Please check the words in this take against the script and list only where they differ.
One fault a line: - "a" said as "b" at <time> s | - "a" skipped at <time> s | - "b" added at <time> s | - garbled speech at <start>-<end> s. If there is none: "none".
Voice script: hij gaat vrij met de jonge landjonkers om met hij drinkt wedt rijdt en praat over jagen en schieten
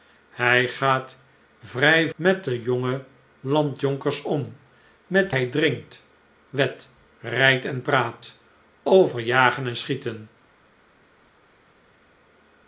none